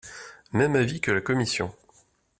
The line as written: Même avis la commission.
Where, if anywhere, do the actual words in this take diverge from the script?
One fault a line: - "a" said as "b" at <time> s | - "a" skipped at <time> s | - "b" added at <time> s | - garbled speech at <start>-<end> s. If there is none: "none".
- "que" added at 1.0 s